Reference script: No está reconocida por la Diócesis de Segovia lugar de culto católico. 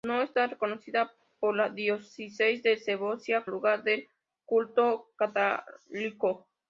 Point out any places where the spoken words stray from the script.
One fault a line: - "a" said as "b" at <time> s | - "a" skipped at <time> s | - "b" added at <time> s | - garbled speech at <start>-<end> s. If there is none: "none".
none